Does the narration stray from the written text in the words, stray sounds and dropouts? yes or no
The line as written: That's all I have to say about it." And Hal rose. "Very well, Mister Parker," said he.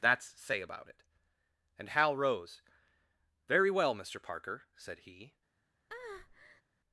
yes